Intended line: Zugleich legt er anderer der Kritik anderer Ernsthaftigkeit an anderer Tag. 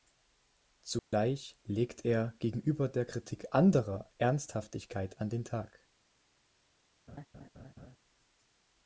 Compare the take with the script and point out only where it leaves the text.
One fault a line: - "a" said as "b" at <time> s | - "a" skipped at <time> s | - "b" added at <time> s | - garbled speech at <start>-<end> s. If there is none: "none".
- "anderer" said as "gegenüber" at 2.4 s
- "anderer" said as "den" at 5.3 s